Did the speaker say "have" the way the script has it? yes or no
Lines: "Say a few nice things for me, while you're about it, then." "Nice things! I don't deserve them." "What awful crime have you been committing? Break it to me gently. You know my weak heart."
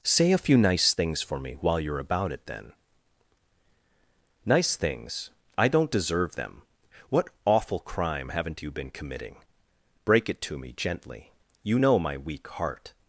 no